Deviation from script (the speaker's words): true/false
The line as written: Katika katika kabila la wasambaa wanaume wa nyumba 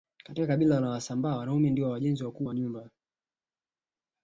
true